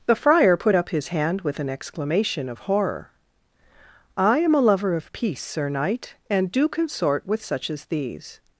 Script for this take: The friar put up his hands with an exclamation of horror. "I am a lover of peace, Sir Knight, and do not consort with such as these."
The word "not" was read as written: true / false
false